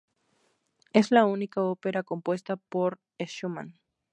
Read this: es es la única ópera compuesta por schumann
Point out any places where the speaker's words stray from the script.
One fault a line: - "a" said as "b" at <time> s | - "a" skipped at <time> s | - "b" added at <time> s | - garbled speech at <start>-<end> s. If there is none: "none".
- "es" skipped at 1.1 s